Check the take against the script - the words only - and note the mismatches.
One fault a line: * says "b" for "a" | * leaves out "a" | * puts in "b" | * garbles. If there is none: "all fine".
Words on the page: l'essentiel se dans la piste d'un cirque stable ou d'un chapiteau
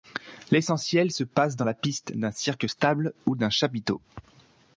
* puts in "passe"